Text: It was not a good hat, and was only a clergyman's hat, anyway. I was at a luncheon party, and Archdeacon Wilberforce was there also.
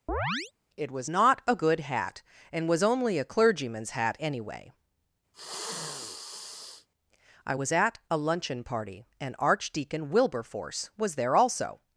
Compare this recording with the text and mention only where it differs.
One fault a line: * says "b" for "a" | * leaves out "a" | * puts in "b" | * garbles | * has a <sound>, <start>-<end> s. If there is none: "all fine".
* has a chirp, 0.1-0.5 s
* has a sniff, 5.3-6.9 s